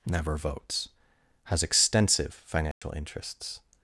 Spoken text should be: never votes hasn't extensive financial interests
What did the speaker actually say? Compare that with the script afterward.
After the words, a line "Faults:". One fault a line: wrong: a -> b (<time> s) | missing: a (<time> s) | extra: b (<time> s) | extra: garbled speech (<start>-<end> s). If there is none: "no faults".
never votes has extensive financial interests
Faults:
wrong: hasn't -> has (1.4 s)